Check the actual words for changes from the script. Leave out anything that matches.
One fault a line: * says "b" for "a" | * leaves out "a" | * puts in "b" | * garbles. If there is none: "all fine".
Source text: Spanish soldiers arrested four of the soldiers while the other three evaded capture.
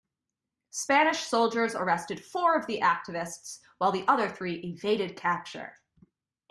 * says "activists" for "soldiers"